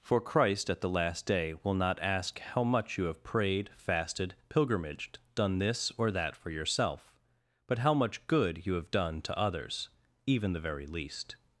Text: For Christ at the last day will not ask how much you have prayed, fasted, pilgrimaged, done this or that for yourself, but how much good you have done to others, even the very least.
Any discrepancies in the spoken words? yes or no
no